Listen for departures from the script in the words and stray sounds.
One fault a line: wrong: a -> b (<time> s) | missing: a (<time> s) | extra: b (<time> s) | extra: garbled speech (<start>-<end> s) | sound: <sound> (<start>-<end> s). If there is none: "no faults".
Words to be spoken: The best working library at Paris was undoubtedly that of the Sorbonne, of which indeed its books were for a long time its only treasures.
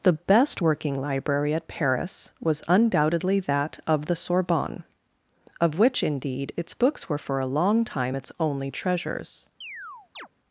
sound: chirp (9.6-10.3 s)